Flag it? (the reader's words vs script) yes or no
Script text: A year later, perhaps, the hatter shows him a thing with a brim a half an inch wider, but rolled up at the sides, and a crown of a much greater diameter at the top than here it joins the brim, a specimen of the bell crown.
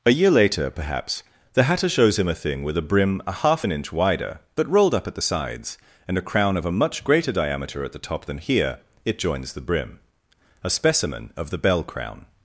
no